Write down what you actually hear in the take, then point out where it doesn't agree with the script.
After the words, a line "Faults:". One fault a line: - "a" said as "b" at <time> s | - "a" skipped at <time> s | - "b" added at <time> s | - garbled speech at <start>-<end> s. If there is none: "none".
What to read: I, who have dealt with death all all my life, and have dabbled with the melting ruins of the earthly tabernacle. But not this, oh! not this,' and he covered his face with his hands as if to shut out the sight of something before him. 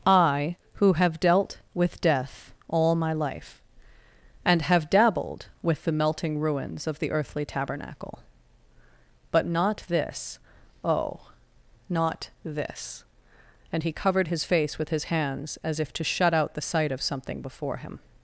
I, who have dealt with death all my life, and have dabbled with the melting ruins of the earthly tabernacle. But not this, oh! not this,' and he covered his face with his hands as if to shut out the sight of something before him.
Faults:
- "all" skipped at 3.0 s